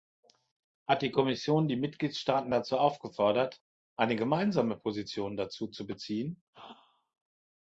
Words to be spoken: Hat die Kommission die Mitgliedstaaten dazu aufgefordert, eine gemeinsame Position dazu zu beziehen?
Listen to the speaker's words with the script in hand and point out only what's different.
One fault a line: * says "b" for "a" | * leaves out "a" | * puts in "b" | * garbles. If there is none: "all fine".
all fine